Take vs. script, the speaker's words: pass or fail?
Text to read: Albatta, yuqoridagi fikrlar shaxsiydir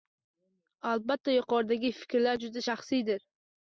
fail